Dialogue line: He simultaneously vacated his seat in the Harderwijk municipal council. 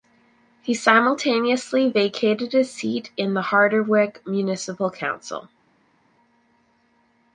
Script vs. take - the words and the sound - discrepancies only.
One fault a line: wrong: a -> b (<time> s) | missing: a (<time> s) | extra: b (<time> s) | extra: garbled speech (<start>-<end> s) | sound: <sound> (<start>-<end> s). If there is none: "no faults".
no faults